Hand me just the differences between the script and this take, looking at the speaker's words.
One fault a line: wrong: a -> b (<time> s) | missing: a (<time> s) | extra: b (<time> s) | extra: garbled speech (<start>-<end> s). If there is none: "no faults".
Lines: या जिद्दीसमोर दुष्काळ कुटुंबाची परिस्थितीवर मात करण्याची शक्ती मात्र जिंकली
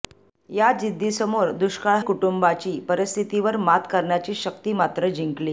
no faults